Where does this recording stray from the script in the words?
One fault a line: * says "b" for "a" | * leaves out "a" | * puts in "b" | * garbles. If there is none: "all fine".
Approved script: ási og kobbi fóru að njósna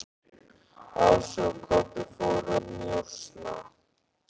* leaves out "að"